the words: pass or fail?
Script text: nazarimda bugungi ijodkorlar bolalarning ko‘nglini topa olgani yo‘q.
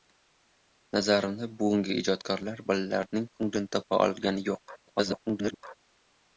fail